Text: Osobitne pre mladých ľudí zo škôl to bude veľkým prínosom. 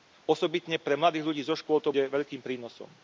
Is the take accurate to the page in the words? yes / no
no